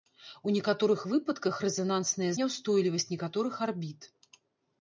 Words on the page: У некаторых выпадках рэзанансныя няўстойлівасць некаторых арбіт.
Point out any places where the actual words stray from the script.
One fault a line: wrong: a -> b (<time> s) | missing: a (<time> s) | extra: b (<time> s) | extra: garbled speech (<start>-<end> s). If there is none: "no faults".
no faults